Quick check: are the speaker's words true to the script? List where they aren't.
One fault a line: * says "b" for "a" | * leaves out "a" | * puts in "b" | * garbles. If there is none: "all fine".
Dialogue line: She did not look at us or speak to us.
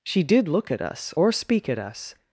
* leaves out "not"
* says "at" for "to"